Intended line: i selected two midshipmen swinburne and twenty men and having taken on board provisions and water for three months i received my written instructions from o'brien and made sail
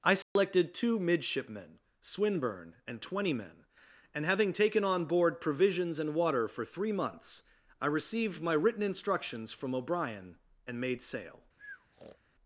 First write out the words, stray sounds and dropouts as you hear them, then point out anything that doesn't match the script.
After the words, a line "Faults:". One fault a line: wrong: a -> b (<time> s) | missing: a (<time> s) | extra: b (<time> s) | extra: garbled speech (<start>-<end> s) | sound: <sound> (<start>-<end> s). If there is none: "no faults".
i selected two midshipmen swinburne and twenty men and having taken on board provisions and water for three months i received my written instructions from o'brien and made sail
Faults:
sound: dropout (0.2-0.4 s)
sound: breath (11.6-12.2 s)